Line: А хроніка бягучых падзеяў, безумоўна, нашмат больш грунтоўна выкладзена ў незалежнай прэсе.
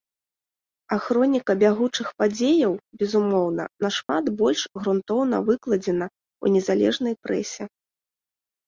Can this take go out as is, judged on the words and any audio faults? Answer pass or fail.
fail